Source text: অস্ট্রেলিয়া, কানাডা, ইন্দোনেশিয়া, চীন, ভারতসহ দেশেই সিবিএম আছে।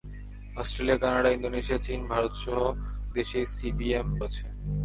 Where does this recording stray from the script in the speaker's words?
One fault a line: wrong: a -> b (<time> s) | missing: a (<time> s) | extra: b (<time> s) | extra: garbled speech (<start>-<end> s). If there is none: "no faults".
no faults